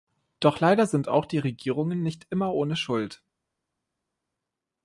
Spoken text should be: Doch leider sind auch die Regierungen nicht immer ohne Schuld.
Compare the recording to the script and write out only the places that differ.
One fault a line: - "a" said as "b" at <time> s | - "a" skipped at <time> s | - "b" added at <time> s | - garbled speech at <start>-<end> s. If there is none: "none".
none